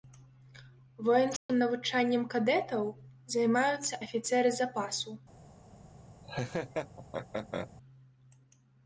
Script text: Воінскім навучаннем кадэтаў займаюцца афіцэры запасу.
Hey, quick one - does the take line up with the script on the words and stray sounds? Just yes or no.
no